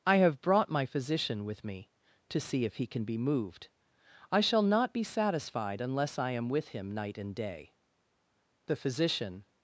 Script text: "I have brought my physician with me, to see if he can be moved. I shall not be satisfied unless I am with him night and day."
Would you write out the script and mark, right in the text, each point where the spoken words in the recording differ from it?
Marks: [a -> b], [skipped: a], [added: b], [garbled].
"I have brought my physician with me, to see if he can be moved. I shall not be satisfied unless I am with him night and day." [added: The physician]